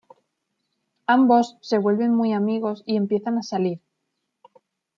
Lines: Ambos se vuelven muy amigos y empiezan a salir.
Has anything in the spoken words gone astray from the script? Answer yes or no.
no